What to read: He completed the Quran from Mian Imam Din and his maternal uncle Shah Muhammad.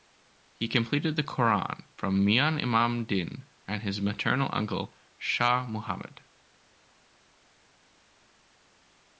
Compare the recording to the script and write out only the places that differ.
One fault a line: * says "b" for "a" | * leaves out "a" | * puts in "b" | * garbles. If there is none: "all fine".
all fine